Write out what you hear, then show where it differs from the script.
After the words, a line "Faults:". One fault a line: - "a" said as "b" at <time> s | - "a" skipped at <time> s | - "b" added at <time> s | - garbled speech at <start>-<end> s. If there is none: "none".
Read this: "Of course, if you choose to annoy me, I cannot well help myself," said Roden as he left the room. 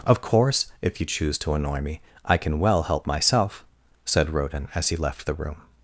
"Of course, if you choose to annoy me, I can well help myself," said Roden as he left the room.
Faults:
- "cannot" said as "can" at 2.4 s